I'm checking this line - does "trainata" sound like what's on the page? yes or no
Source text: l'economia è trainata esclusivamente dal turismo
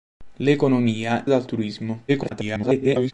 no